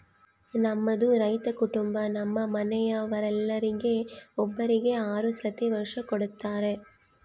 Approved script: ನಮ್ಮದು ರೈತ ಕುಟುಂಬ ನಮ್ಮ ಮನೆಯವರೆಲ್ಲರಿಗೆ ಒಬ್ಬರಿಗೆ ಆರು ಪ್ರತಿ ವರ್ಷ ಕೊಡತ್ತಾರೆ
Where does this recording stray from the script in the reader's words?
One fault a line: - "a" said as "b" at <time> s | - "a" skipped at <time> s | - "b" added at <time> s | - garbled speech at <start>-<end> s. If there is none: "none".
none